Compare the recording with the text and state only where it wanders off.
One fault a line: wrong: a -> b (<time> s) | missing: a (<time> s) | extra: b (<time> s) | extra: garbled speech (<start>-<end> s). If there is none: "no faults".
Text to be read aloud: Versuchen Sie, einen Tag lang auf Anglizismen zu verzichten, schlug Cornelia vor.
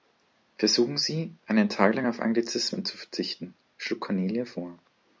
no faults